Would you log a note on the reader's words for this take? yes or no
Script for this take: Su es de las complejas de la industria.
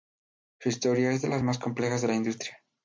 yes